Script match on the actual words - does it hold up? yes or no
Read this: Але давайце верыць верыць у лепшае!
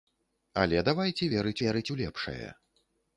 yes